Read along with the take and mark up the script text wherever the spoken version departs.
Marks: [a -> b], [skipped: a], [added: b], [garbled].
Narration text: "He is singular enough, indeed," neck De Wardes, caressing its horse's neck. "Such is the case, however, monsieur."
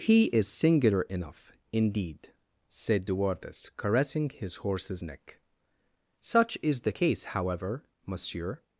"He is singular enough, indeed," [neck -> said] De Wardes, caressing [its -> his] horse's neck. "Such is the case, however, monsieur."